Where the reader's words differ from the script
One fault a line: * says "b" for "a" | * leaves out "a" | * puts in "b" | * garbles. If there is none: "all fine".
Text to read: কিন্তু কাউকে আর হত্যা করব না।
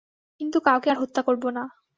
all fine